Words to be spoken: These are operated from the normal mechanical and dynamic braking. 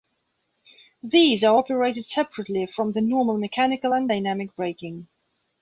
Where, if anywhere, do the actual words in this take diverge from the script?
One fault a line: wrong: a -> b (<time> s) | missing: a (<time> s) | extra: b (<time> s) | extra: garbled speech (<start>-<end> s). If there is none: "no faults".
extra: separately (2.0 s)